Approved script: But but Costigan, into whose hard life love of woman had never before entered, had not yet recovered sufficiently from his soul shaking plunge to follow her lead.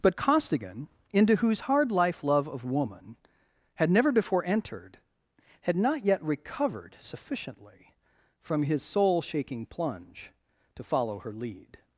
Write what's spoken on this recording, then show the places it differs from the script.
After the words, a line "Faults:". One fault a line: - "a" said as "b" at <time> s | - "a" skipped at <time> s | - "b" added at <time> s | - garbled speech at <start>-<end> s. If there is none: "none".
But Costigan, into whose hard life love of woman had never before entered, had not yet recovered sufficiently from his soul shaking plunge to follow her lead.
Faults:
- "but" skipped at 0.1 s